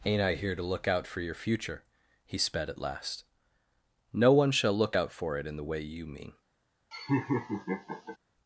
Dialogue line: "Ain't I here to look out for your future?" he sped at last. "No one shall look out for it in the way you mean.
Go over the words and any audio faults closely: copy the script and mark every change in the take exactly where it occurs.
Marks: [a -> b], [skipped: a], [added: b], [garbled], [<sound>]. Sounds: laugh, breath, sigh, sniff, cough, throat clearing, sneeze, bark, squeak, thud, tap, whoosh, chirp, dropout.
"Ain't I here to look out for your future?" he sped at last. "No one shall look out for it in the way you mean. [laugh]